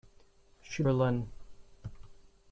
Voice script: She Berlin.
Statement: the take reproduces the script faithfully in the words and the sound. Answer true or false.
true